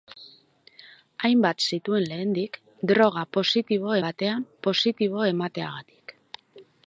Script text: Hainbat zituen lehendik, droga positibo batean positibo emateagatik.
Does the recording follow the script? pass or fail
pass